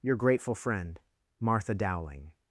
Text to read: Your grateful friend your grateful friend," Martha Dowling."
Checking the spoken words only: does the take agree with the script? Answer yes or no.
no